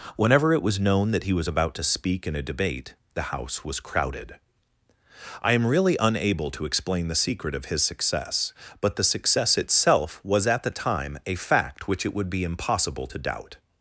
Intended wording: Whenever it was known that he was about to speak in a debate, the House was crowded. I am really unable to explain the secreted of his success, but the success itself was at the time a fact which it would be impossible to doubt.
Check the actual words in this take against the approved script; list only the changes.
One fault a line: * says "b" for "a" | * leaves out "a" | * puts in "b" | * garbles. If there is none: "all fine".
* says "secret" for "secreted"